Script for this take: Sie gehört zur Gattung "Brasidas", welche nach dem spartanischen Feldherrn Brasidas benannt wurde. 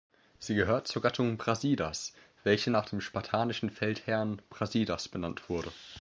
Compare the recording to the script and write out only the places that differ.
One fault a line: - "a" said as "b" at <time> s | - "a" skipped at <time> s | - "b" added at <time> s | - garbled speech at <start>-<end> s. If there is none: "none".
none